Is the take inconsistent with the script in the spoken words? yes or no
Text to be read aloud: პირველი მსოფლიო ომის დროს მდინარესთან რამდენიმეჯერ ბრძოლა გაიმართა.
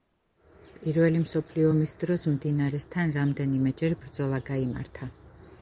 no